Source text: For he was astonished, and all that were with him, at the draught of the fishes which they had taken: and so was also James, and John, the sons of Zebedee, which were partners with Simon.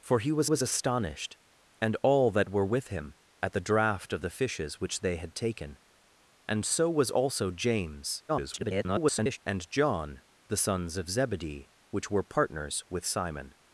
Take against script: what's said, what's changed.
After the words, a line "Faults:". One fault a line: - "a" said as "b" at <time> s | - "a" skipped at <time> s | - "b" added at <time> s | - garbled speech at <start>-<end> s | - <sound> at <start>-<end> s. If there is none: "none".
For he was was astonished, and all that were with him, at the draught of the fishes which they had taken: and so was also James, [garbled] and John, the sons of Zebedee, which were partners with Simon.
Faults:
- "was" added at 0.4 s
- garbled speech at 8.3-9.4 s